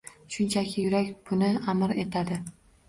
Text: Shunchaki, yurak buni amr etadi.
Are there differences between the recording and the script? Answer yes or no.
no